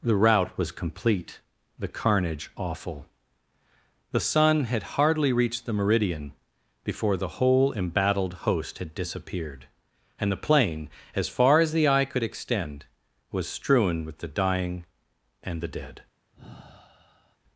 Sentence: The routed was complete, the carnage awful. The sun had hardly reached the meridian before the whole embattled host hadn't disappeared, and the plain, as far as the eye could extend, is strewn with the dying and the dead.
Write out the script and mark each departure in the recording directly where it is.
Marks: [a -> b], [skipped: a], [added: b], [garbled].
The [routed -> rout] was complete, the carnage awful. The sun had hardly reached the meridian before the whole embattled host [hadn't -> had] disappeared, and the plain, as far as the eye could extend, [is -> was] strewn with the dying and the dead.